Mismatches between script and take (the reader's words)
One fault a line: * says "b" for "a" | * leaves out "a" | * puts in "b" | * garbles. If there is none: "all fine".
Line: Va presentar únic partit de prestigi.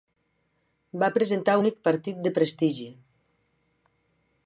all fine